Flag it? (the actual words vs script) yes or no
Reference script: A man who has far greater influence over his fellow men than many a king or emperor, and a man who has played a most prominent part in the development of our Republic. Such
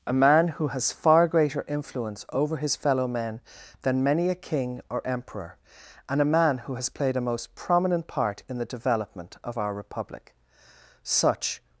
no